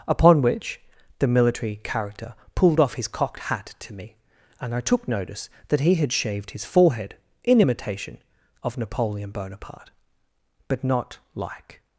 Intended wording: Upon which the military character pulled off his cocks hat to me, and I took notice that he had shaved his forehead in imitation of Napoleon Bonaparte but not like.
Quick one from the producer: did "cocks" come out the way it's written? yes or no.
no